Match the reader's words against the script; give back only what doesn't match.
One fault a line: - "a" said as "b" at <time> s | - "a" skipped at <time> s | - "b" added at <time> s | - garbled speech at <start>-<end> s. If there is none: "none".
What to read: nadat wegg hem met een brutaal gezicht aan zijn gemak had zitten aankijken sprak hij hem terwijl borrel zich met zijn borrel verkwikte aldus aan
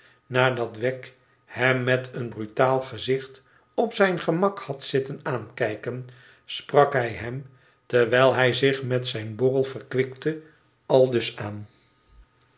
- "aan" said as "op" at 3.7 s
- "borrel" said as "hij" at 8.3 s